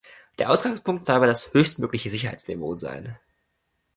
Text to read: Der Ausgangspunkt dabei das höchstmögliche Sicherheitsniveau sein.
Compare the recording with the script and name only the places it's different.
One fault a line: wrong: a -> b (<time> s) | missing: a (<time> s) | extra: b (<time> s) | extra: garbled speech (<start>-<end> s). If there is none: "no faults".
no faults